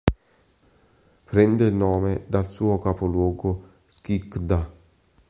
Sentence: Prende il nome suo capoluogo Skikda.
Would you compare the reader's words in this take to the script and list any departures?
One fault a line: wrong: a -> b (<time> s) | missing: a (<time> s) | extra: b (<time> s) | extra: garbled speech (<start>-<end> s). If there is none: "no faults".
extra: dal (2.2 s)